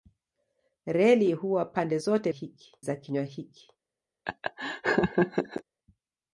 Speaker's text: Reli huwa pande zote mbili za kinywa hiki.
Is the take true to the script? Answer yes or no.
no